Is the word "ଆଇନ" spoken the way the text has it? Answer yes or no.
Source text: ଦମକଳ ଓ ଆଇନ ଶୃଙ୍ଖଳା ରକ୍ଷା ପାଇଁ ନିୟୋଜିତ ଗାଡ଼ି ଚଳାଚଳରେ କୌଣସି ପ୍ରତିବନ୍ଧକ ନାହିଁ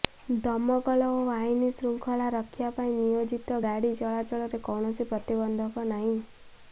yes